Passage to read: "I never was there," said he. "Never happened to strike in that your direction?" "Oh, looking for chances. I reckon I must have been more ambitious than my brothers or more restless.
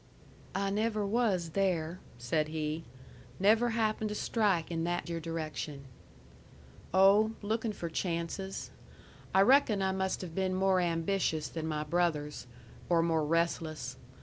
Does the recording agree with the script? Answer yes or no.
yes